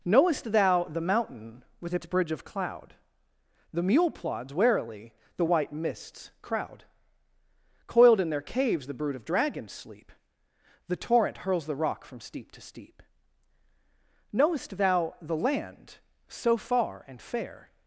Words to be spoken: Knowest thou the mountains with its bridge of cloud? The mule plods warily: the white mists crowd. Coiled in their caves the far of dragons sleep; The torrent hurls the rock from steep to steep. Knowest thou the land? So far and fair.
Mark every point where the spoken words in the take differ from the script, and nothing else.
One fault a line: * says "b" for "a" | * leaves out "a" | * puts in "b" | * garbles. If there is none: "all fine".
* says "mountain" for "mountains"
* says "brood" for "far"